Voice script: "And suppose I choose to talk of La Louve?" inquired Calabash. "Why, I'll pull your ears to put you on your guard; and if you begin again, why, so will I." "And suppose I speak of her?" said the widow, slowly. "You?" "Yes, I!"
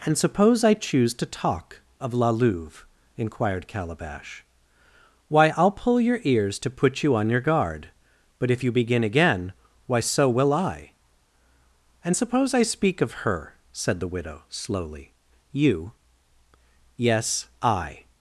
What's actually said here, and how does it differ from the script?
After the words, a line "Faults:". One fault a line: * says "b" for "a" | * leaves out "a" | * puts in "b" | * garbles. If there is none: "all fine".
"And suppose I choose to talk of La Louve?" inquired Calabash. "Why, I'll pull your ears to put you on your guard; but if you begin again, why, so will I." "And suppose I speak of her?" said the widow, slowly. "You?" "Yes, I!"
Faults:
* says "but" for "and"